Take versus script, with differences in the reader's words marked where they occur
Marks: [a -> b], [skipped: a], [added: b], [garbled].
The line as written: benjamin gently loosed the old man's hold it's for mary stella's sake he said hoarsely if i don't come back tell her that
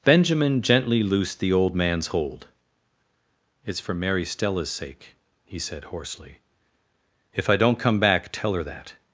benjamin gently loosed the old man's hold it's for mary stella's sake he said hoarsely if i don't come back tell her that